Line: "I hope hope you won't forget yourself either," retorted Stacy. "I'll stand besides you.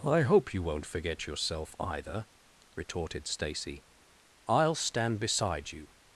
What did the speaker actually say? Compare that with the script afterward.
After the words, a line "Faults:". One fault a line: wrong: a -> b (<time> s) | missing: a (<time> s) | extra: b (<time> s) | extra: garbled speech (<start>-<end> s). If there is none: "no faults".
"I hope you won't forget yourself either," retorted Stacy. "I'll stand beside you.
Faults:
missing: hope (0.5 s)
wrong: besides -> beside (5.2 s)